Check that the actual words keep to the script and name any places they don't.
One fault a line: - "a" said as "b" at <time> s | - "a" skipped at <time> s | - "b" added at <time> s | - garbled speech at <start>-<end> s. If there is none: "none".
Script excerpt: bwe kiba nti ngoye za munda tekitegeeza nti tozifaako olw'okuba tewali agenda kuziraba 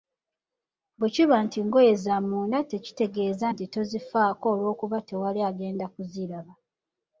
none